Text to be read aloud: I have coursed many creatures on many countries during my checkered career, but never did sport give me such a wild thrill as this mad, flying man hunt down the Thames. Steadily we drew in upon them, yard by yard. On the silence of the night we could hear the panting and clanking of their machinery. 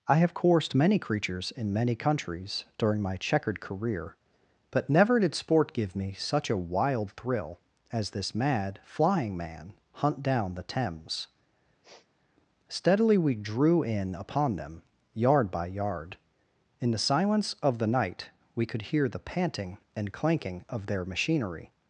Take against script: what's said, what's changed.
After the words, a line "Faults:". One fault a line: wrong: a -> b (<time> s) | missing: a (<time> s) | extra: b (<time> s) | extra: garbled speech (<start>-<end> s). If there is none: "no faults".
I have coursed many creatures in many countries during my checkered career, but never did sport give me such a wild thrill as this mad, flying man hunt down the Thames. Steadily we drew in upon them, yard by yard. In the silence of the night we could hear the panting and clanking of their machinery.
Faults:
wrong: on -> in (1.5 s)
wrong: On -> In (16.8 s)